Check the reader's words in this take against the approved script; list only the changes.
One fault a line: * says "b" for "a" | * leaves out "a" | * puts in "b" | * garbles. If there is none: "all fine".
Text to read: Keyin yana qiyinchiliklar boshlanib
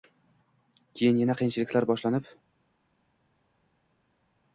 all fine